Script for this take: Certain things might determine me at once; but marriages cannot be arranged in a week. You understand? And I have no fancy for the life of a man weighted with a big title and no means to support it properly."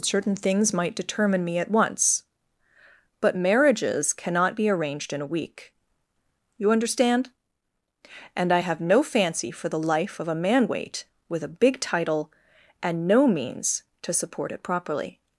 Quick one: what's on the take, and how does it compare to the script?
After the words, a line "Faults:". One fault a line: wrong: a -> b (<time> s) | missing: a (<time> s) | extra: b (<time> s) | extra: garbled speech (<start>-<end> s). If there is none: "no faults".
Certain things might determine me at once; but marriages cannot be arranged in a week. You understand? And I have no fancy for the life of a man weight with a big title and no means to support it properly."
Faults:
wrong: weighted -> weight (10.7 s)